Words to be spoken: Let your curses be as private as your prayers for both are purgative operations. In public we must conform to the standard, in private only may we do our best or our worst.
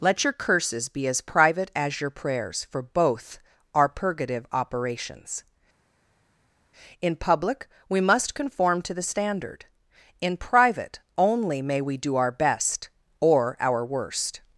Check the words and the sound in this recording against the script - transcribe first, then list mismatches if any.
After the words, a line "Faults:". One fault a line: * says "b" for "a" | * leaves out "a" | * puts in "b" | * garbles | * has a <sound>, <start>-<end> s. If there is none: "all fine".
Let your curses be as private as your prayers for both are purgative operations. In public we must conform to the standard, in private only may we do our best or our worst.
Faults:
all fine